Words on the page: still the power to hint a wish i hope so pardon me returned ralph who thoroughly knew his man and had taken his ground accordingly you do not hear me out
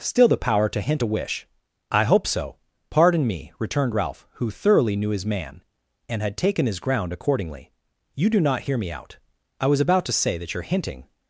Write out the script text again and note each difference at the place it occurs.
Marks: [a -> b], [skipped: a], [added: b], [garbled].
still the power to hint a wish i hope so pardon me returned ralph who thoroughly knew his man and had taken his ground accordingly you do not hear me out [added: i was about to say that your hinting]